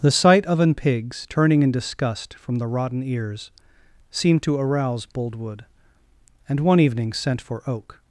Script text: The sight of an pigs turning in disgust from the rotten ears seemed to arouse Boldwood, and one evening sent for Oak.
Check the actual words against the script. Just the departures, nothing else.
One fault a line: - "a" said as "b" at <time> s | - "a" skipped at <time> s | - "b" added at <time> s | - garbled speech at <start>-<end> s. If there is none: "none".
none